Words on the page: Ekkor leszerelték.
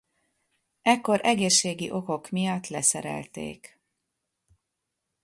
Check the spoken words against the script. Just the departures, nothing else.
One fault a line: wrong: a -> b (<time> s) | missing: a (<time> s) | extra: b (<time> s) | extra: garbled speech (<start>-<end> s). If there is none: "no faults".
extra: egészségi okok miatt (1.2 s)